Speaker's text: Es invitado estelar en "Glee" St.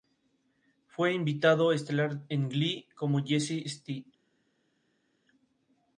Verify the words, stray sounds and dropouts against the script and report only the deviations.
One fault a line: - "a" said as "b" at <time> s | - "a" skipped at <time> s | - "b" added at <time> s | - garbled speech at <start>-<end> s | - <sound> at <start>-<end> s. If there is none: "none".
- "Es" said as "Fue" at 0.9 s
- "como Jesse" added at 3.0 s